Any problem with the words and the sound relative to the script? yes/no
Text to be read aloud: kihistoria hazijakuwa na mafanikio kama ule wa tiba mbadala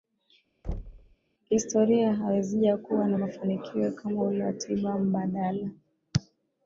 yes